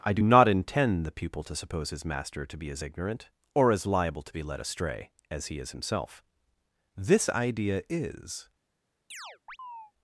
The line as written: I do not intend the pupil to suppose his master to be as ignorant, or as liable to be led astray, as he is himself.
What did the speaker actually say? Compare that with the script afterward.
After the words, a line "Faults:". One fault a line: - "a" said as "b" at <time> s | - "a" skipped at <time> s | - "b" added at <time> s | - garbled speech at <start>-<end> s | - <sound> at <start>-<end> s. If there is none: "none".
I do not intend the pupil to suppose his master to be as ignorant, or as liable to be led astray, as he is himself. This idea is
Faults:
- "This idea is" added at 6.9 s
- chirp at 9.1-9.9 s